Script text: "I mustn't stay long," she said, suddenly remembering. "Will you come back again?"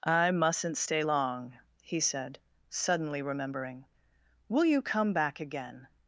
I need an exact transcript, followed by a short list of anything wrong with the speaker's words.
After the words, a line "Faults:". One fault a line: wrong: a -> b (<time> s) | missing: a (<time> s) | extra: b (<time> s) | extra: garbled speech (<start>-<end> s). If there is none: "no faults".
"I mustn't stay long," he said, suddenly remembering. "Will you come back again?"
Faults:
wrong: she -> he (1.8 s)